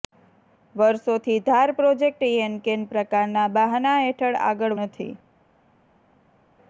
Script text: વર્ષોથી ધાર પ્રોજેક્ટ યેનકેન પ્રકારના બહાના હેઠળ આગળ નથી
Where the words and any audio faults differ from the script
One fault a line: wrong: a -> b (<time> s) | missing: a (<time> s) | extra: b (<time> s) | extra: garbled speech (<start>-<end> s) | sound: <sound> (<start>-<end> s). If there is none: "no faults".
no faults